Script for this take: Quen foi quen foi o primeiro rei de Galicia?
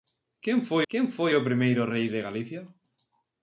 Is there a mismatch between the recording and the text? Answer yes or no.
no